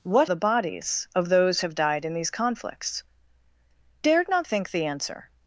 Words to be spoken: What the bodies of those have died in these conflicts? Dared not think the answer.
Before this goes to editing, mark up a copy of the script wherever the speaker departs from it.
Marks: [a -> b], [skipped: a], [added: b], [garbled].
What the bodies of those have died in these conflicts? Dared not think the answer.